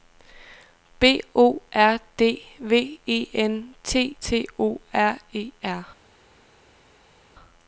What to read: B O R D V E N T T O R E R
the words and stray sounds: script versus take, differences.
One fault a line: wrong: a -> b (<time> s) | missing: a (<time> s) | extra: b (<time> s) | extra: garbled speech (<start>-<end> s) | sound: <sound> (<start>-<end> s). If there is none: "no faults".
no faults